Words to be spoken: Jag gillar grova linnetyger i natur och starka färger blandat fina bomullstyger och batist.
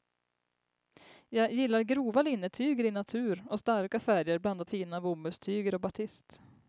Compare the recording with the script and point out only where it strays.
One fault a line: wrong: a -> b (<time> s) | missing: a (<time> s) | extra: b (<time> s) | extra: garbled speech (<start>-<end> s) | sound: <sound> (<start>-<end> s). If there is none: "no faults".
no faults